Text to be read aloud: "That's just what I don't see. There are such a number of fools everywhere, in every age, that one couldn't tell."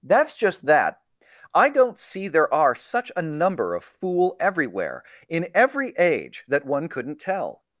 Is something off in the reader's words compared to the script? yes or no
yes